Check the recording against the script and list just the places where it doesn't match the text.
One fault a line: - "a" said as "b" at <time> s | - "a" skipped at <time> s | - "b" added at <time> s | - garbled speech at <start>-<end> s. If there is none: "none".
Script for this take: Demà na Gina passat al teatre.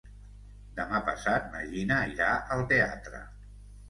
- "passat" added at 1.1 s
- "passat" said as "irà" at 2.1 s